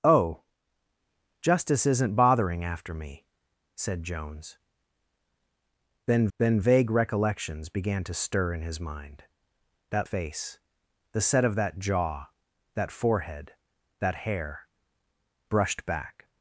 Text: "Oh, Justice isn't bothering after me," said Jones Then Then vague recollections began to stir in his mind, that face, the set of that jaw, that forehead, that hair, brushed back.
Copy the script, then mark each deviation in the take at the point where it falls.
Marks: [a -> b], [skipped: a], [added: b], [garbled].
"Oh, Justice isn't bothering after me," said Jones Then Then vague recollections began to stir in his mind, that face, the set of that jaw, that forehead, that hair, brushed back.